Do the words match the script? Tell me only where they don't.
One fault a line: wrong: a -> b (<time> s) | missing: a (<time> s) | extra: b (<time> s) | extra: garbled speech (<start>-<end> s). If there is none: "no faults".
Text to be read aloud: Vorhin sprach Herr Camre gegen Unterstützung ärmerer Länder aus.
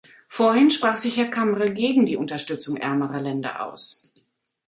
extra: sich (1.0 s)
extra: die (2.1 s)